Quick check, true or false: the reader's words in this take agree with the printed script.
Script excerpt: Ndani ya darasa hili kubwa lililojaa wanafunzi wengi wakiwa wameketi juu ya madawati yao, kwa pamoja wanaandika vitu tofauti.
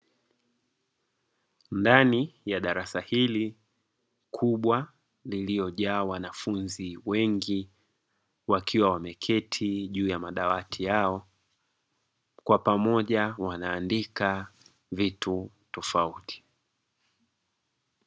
true